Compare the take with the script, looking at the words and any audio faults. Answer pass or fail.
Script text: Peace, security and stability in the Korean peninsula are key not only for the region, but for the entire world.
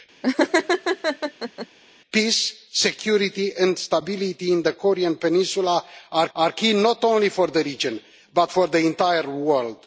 fail